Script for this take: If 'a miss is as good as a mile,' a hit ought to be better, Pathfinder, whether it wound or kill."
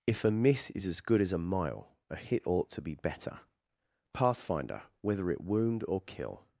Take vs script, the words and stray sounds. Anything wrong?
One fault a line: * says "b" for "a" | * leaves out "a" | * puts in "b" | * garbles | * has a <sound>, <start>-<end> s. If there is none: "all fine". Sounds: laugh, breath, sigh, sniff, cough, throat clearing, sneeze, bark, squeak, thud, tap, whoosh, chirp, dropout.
all fine